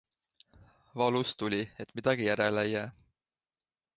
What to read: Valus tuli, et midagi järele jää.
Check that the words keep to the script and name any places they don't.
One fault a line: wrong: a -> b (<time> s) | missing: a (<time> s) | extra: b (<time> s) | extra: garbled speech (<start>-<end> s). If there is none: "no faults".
extra: ei (2.6 s)